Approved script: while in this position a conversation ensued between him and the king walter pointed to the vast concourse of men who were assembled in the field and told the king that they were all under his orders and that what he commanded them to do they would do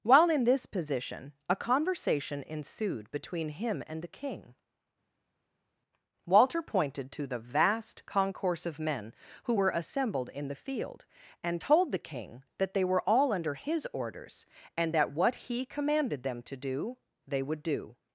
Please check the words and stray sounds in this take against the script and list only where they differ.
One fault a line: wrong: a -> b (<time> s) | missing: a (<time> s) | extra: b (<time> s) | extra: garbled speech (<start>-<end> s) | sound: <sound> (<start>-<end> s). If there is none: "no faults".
no faults